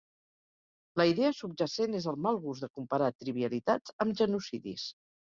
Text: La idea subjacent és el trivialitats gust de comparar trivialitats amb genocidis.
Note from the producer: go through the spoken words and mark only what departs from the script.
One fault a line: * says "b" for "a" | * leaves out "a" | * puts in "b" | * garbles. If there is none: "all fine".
* says "mal" for "trivialitats"